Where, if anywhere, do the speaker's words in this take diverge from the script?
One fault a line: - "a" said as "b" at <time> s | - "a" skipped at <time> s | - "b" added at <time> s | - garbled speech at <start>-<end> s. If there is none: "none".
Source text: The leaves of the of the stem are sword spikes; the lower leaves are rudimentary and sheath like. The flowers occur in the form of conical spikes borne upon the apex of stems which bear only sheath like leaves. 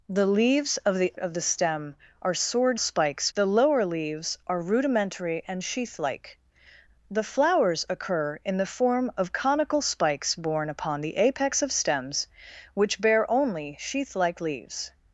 none